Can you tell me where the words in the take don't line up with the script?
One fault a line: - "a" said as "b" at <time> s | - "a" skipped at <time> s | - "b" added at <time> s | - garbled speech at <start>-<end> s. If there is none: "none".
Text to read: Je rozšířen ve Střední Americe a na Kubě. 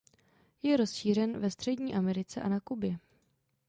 none